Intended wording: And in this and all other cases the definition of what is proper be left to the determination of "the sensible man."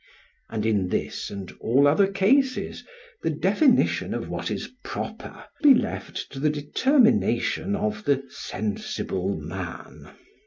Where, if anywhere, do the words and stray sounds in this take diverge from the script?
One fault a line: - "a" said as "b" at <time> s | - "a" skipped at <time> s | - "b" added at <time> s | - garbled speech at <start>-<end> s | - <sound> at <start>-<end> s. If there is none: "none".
none